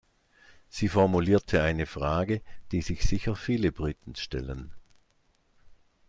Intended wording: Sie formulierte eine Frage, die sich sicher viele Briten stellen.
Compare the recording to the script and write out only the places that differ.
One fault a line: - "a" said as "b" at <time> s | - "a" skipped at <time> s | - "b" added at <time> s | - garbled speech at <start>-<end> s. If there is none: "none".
none